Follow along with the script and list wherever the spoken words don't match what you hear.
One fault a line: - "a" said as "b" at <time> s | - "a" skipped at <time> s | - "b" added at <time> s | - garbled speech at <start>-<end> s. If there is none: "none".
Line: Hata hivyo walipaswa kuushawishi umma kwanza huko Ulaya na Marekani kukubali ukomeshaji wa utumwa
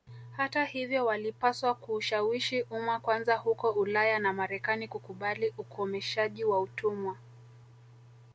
none